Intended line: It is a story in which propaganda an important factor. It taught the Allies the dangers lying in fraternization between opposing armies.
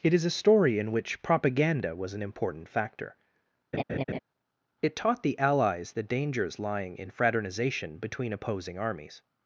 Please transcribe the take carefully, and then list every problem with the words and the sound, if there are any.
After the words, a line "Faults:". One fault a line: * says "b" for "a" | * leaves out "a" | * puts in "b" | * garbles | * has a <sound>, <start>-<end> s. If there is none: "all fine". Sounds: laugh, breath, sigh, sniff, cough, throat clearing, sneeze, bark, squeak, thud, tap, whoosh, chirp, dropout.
It is a story in which propaganda was an important factor. It taught the Allies the dangers lying in fraternization between opposing armies.
Faults:
* puts in "was"
* has a laugh, 3.7-4.2 s